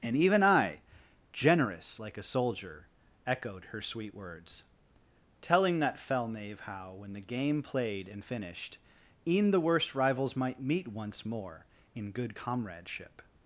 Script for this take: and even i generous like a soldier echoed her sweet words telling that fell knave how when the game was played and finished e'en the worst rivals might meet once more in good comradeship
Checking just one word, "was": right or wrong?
wrong